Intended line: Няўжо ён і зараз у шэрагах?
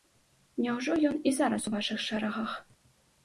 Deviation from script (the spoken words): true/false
true